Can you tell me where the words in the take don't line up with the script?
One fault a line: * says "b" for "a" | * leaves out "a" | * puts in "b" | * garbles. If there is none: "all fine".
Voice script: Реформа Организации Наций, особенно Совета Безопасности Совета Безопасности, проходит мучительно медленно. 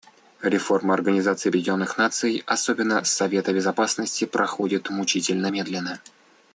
* puts in "Объединенных"
* leaves out "Совета Безопасности"